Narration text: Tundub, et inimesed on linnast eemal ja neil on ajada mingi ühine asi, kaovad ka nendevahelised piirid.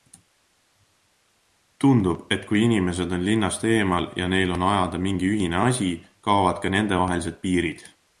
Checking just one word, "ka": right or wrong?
right